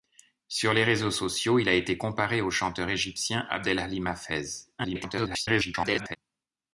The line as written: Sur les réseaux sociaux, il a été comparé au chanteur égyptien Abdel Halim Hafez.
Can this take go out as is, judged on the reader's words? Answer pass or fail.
fail